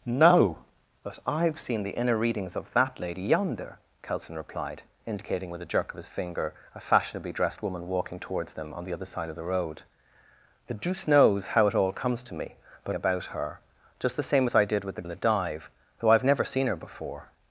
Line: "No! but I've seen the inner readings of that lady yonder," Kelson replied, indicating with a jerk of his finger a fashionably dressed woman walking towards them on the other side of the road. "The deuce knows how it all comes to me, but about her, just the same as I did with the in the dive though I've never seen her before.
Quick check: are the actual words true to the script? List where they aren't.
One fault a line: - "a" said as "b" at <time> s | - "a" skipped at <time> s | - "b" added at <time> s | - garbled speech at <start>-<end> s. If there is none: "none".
none